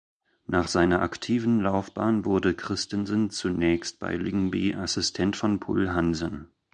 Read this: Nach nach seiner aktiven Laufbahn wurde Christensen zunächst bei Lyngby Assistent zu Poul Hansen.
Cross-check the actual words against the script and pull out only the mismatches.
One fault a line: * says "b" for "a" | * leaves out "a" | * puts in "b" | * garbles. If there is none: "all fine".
* leaves out "nach"
* says "von" for "zu"